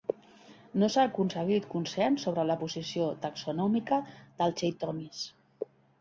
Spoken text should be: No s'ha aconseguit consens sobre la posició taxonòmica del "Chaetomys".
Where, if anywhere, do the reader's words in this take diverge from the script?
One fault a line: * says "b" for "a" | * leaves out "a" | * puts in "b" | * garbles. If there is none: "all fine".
all fine